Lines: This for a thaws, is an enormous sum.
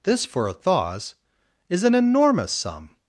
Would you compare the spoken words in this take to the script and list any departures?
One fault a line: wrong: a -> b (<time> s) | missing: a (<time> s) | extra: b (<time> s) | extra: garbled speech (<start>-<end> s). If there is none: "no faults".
no faults